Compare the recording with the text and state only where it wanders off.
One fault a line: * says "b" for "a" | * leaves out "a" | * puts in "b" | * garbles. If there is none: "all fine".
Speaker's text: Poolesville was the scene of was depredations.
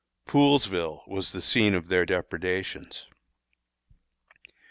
* says "their" for "was"